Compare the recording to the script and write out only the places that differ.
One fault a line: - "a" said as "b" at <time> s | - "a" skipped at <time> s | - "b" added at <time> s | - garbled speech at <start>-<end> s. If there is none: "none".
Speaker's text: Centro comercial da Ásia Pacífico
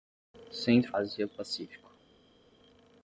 - "comercial da" skipped at 0.9 s